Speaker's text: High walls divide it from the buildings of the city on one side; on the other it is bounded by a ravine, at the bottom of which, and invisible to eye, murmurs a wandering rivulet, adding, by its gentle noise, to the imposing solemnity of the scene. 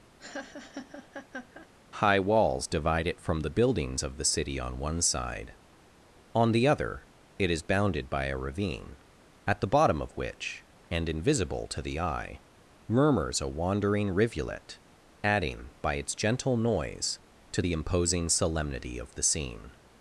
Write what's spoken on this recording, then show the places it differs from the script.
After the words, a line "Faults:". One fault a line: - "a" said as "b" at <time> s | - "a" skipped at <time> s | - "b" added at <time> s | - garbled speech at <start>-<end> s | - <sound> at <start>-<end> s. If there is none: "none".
High walls divide it from the buildings of the city on one side; on the other it is bounded by a ravine, at the bottom of which, and invisible to the eye, murmurs a wandering rivulet, adding, by its gentle noise, to the imposing solemnity of the scene.
Faults:
- laugh at 0.2-1.7 s
- "the" added at 11.8 s